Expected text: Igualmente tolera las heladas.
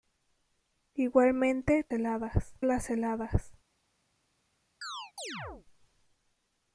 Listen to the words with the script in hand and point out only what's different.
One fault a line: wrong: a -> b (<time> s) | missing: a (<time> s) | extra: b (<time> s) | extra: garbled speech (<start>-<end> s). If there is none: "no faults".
wrong: tolera -> heladas (1.9 s)